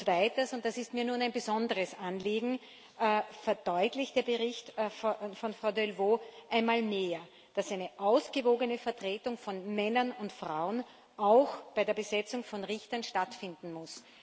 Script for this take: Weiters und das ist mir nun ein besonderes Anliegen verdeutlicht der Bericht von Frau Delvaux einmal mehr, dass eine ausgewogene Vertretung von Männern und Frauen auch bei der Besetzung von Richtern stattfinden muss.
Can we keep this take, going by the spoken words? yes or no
yes